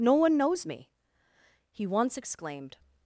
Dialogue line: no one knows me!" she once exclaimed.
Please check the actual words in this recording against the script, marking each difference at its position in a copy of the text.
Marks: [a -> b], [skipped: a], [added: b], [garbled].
no one knows me!" [she -> he] once exclaimed.